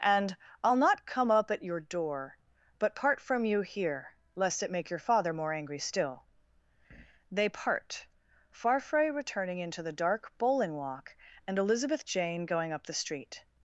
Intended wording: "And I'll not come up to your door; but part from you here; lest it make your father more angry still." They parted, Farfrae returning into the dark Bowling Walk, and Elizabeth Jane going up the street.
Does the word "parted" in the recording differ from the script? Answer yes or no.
yes